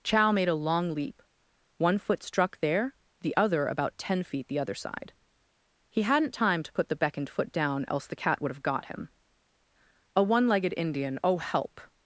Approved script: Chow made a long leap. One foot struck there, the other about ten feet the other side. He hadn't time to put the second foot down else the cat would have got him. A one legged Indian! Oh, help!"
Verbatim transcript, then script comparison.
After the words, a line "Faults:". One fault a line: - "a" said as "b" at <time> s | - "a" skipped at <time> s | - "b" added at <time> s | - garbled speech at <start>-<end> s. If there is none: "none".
Chow made a long leap. One foot struck there, the other about ten feet the other side. He hadn't time to put the beckoned foot down else the cat would have got him. A one legged Indian! Oh, help!"
Faults:
- "second" said as "beckoned" at 7.0 s